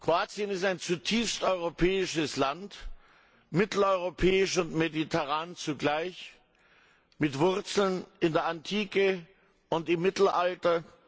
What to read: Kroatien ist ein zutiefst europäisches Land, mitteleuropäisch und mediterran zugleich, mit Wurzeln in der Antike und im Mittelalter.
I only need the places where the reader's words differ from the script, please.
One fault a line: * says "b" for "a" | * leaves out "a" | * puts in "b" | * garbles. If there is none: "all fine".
all fine